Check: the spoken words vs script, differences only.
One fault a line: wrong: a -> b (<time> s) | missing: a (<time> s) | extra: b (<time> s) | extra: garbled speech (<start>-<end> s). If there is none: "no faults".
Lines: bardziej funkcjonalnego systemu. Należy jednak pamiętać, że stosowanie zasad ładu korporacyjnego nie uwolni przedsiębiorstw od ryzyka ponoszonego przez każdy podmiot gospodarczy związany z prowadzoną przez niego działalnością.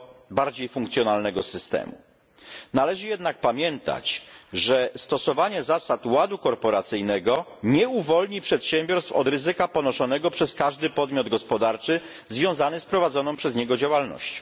no faults